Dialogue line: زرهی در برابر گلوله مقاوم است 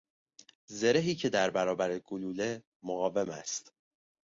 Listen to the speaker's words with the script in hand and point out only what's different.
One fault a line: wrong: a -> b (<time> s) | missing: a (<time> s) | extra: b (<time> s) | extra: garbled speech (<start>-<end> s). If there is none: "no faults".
extra: که (1.1 s)